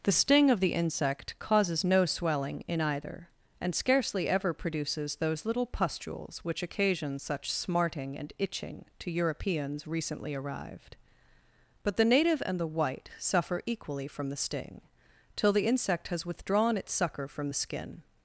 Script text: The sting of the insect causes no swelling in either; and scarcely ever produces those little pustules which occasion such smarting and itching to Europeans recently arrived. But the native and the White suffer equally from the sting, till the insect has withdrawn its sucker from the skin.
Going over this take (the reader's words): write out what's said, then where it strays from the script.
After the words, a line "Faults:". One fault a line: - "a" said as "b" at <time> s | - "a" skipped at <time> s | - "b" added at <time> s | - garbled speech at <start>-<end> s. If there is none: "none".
The sting of the insect causes no swelling in either; and scarcely ever produces those little pustules which occasion such smarting and itching to Europeans recently arrived. But the native and the White suffer equally from the sting, till the insect has withdrawn its sucker from the skin.
Faults:
none